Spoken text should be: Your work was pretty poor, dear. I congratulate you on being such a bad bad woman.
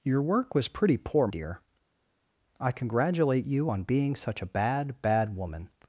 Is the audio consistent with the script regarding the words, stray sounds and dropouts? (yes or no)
yes